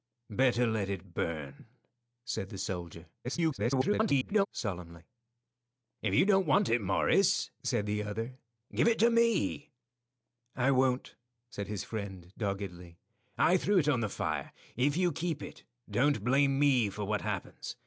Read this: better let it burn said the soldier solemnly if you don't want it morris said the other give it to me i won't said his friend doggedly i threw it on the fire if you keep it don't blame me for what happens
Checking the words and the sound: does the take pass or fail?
fail